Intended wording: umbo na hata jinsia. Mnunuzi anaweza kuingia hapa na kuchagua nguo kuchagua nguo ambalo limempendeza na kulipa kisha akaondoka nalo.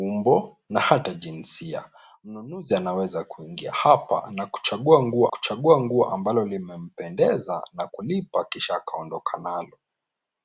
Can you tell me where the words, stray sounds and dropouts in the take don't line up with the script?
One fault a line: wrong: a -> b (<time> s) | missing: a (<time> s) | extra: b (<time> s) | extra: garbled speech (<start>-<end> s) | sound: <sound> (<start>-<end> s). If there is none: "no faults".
no faults